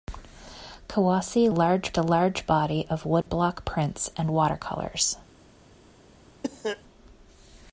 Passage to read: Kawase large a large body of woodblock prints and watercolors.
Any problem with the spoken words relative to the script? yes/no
no